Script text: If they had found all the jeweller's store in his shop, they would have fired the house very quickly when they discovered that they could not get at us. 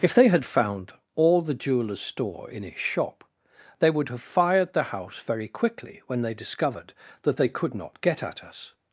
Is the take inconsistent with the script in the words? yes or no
no